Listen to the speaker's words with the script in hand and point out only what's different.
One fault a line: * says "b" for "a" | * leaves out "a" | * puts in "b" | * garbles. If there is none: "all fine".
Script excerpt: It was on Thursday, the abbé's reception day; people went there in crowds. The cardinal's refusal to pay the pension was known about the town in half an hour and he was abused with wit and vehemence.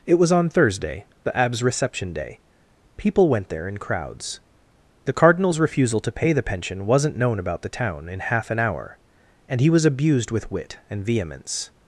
* says "wasn't" for "was"